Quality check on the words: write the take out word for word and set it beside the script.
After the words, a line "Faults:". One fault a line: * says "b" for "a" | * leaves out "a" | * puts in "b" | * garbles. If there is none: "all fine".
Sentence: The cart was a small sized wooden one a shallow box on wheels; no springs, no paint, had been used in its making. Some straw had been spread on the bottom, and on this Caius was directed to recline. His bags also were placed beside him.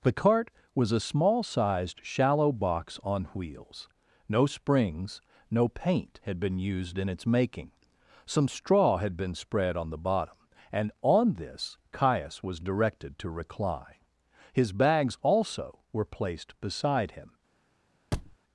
The cart was a small sized shallow box on wheels; no springs, no paint, had been used in its making. Some straw had been spread on the bottom, and on this Caius was directed to recline. His bags also were placed beside him.
Faults:
* leaves out "wooden one a"